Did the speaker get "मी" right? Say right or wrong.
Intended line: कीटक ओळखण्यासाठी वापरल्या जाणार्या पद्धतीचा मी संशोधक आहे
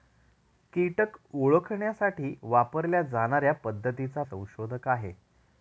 wrong